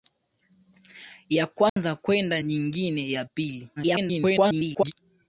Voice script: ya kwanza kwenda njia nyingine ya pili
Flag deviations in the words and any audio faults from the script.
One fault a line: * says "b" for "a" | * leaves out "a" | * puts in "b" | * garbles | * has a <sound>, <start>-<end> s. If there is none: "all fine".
* has a dropout, 1.7-1.8 s
* leaves out "njia"
* garbles